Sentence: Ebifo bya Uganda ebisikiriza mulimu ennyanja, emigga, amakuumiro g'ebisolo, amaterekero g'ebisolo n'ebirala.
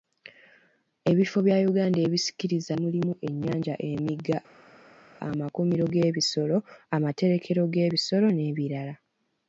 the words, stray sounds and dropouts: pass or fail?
pass